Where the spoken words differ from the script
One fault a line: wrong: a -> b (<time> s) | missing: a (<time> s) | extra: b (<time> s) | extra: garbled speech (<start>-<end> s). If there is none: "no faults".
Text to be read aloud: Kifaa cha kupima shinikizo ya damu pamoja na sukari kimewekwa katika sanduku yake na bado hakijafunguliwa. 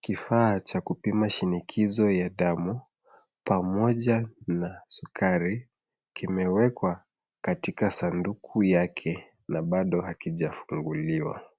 no faults